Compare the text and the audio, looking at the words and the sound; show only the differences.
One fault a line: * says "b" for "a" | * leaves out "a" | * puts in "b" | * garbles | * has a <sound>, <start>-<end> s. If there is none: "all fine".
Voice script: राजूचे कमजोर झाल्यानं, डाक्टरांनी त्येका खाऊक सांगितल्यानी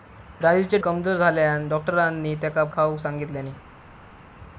all fine